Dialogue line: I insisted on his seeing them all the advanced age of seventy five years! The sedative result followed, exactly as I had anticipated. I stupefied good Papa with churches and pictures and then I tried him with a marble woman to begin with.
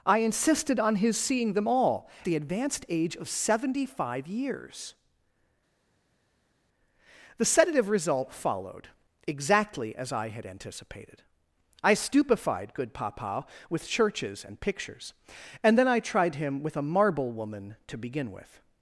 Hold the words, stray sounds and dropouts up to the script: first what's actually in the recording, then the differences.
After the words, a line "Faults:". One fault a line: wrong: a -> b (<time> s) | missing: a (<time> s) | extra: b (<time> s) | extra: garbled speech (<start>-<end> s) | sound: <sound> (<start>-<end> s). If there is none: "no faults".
I insisted on his seeing them all the advanced age of seventy five years! The sedative result followed, exactly as I had anticipated. I stupefied good Papa with churches and pictures and then I tried him with a marble woman to begin with.
Faults:
no faults